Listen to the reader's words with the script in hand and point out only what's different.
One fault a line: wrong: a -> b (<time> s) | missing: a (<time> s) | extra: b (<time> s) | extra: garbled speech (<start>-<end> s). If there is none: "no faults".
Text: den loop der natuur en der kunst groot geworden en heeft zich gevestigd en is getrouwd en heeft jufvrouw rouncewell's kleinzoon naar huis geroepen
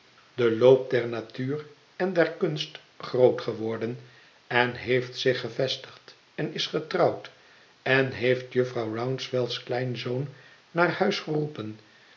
no faults